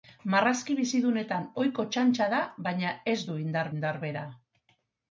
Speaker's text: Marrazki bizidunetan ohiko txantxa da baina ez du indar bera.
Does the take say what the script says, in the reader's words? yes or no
no